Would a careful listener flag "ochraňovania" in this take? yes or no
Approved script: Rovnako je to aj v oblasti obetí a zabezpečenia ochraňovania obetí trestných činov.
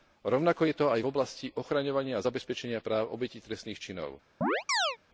yes